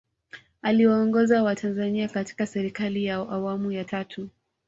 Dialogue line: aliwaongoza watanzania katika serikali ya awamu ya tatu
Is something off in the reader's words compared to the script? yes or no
no